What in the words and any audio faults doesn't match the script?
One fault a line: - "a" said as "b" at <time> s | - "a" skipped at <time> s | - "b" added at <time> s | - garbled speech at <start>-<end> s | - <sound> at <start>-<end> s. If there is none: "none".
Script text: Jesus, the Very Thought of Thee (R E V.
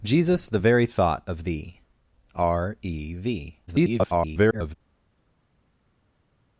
- garbled speech at 3.7-4.8 s